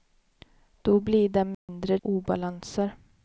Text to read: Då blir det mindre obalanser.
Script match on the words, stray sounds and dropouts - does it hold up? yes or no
no